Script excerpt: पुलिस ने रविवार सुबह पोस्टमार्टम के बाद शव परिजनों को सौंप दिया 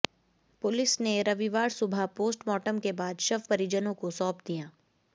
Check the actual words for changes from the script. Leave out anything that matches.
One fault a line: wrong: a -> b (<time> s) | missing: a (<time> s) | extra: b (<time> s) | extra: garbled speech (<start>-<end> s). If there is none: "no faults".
no faults